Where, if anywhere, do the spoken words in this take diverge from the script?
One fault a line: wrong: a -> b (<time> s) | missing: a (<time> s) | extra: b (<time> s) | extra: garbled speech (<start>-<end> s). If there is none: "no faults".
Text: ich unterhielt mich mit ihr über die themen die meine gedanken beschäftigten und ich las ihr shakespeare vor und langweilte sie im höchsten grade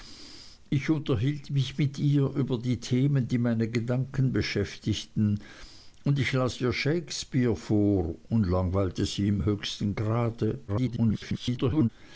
extra: garbled speech (10.7-11.9 s)